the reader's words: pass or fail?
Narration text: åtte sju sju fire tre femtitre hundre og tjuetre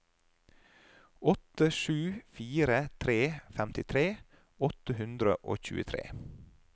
fail